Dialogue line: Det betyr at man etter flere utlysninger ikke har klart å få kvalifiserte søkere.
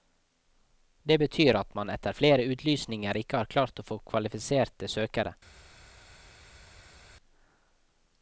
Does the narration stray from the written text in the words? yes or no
no